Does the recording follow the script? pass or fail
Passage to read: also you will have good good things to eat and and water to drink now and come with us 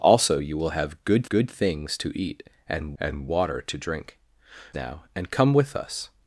pass